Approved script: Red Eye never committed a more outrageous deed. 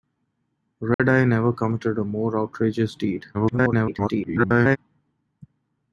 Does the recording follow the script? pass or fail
fail